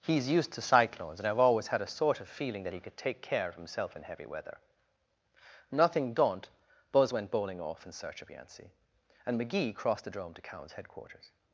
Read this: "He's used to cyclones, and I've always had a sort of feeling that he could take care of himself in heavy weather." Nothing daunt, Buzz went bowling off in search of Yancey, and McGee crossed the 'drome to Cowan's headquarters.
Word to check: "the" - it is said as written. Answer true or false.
true